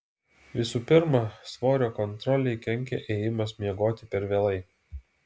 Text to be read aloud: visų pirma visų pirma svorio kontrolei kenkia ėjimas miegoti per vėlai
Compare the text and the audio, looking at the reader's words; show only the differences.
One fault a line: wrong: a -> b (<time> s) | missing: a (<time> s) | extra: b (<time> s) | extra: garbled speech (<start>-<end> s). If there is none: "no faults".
missing: visų pirma (1.2 s)